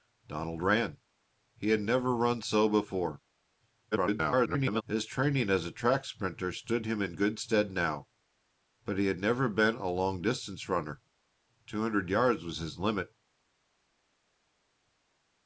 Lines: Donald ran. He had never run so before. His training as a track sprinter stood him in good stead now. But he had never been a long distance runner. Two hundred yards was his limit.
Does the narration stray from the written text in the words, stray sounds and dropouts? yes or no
yes